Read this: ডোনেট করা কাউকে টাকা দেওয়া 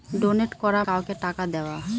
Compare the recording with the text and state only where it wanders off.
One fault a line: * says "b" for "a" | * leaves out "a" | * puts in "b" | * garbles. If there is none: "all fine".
all fine